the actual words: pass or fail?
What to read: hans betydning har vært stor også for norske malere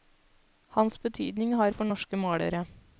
fail